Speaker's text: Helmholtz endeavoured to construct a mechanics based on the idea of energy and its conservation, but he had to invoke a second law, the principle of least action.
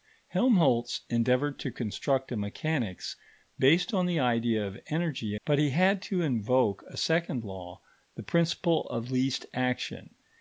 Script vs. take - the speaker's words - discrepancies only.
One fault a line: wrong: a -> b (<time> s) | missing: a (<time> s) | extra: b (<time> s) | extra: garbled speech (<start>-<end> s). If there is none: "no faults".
missing: and its conservation (5.3 s)